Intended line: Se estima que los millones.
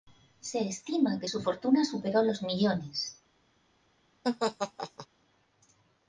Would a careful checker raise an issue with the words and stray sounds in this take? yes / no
yes